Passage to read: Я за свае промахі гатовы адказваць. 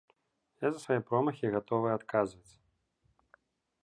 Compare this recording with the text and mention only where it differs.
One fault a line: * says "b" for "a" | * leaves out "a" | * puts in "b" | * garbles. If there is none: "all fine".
all fine